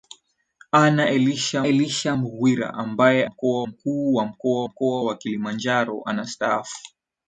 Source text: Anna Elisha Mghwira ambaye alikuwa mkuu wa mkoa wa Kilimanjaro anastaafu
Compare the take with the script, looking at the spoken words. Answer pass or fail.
fail